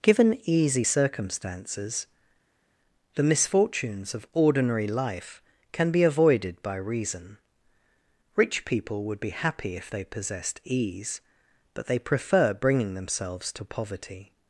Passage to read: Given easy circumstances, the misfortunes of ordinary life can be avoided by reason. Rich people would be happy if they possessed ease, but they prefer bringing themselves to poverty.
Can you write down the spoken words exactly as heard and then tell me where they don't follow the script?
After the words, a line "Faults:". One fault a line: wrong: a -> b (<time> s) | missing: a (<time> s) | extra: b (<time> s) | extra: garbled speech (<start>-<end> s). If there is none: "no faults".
Given easy circumstances, the misfortunes of ordinary life can be avoided by reason. Rich people would be happy if they possessed ease, but they prefer bringing themselves to poverty.
Faults:
no faults